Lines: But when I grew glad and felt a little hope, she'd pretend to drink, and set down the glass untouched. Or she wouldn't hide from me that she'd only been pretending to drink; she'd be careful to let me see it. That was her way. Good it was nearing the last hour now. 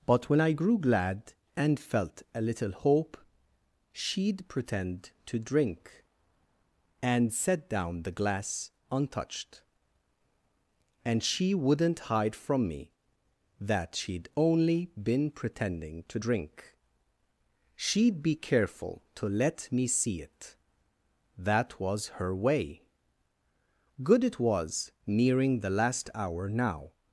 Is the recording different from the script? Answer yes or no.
yes